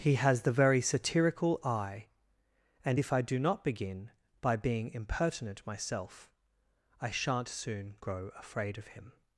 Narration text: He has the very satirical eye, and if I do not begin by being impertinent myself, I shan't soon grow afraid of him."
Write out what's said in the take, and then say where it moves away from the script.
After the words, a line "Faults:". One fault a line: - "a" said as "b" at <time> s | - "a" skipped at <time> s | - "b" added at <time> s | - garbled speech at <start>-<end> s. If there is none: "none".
He has the very satirical eye, and if I do not begin by being impertinent myself, I shan't soon grow afraid of him."
Faults:
none